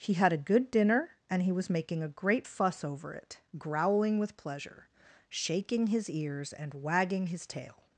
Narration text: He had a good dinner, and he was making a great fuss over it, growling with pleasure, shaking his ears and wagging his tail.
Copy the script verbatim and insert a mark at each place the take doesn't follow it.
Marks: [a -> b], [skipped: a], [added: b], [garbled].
He had a good dinner, and he was making a great fuss over it, growling with pleasure, shaking his ears and wagging his tail.